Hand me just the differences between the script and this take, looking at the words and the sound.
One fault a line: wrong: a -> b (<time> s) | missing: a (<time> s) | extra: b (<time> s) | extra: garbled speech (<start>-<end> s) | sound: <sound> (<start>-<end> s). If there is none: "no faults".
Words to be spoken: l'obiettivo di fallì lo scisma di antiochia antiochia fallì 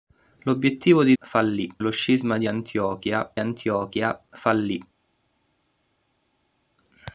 no faults